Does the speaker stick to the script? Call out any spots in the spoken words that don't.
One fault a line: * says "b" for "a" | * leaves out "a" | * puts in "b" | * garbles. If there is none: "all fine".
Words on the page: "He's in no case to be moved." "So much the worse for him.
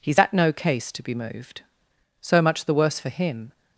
* says "at" for "in"